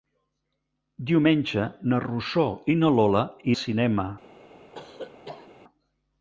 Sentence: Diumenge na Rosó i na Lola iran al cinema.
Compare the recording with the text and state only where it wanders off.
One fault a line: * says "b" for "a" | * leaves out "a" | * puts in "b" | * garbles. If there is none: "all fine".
* leaves out "iran"